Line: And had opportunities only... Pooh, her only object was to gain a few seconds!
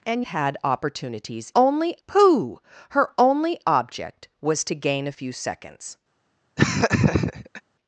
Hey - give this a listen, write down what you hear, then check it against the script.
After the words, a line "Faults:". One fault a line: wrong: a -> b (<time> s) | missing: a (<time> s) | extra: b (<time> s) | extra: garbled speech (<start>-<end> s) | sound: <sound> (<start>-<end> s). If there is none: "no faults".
And had opportunities only... Pooh, her only object was to gain a few seconds!
Faults:
sound: laugh (6.6-7.6 s)